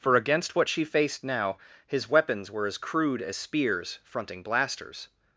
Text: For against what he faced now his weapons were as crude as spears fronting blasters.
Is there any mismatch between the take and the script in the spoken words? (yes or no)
yes